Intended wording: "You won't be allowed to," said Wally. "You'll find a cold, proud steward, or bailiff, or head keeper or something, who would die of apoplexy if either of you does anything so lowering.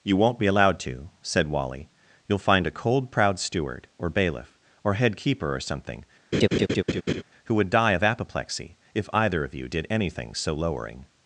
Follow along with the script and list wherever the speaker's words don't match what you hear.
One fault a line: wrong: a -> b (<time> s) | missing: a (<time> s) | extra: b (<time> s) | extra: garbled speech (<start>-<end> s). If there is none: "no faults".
wrong: does -> did (9.7 s)